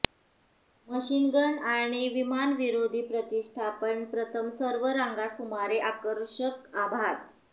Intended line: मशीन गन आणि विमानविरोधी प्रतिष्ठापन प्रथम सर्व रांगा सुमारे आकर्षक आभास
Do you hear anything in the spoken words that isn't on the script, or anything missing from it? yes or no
no